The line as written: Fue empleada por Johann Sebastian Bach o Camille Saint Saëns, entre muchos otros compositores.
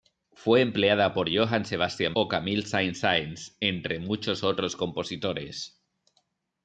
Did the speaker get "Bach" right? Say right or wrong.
wrong